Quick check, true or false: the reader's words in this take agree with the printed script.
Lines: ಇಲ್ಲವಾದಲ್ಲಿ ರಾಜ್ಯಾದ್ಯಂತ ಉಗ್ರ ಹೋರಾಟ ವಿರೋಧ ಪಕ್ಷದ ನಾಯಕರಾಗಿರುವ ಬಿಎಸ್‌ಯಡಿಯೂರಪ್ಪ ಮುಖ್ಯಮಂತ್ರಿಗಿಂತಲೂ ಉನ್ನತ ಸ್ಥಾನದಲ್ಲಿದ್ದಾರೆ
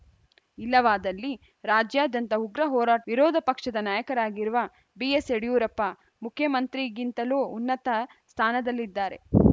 true